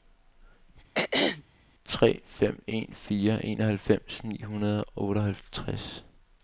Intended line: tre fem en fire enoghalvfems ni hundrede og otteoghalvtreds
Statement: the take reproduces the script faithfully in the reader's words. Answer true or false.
true